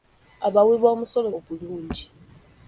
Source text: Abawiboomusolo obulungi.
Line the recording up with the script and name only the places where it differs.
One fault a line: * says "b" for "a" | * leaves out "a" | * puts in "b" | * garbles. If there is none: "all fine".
all fine